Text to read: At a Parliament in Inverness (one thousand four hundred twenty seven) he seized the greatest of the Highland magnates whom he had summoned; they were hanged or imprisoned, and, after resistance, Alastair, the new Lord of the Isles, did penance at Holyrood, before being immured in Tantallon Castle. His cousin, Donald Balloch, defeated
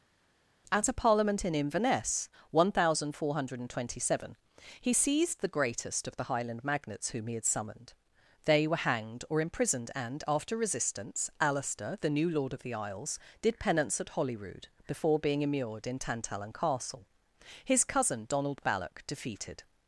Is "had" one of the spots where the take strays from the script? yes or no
no